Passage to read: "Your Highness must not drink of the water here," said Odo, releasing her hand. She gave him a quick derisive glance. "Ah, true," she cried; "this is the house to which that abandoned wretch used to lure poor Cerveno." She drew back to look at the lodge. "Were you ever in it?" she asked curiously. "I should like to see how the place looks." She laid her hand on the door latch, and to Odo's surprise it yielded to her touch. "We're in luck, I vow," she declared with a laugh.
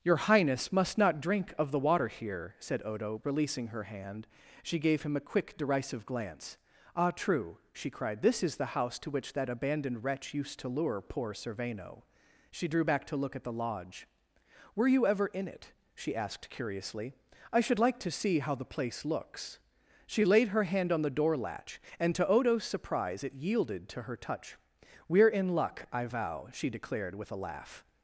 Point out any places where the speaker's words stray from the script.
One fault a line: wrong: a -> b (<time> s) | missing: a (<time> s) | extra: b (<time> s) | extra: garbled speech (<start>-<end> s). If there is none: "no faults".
no faults